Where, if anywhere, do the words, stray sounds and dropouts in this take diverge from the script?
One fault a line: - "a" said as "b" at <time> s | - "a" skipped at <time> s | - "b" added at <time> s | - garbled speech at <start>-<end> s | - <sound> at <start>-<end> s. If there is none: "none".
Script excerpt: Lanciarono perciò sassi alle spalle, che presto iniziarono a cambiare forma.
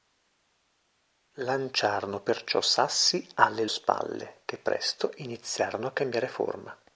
none